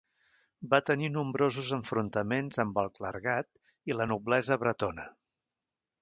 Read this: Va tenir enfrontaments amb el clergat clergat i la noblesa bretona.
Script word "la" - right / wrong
right